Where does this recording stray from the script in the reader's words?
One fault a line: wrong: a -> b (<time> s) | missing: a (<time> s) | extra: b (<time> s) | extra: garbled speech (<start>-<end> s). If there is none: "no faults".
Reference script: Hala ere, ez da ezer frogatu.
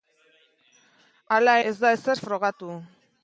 missing: ere (1.5 s)